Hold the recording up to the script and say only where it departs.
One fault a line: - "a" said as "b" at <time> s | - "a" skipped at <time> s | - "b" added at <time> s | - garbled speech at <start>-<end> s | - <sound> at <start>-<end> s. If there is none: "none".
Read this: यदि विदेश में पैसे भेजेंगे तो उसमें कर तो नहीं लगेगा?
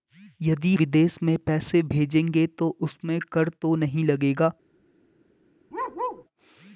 - bark at 5.7-6.3 s